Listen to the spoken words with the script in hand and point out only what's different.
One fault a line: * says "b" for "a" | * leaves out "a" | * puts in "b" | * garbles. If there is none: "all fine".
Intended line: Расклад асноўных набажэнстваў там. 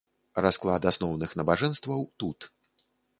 * says "тут" for "там"